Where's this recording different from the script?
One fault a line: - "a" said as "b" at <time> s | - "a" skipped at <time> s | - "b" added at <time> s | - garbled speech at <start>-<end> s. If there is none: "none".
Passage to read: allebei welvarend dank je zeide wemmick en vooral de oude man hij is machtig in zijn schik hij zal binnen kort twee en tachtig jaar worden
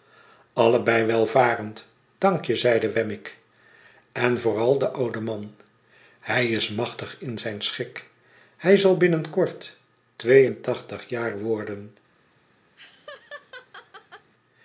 none